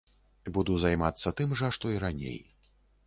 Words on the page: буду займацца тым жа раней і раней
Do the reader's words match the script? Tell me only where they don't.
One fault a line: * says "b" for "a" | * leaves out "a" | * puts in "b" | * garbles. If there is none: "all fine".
* says "што" for "раней"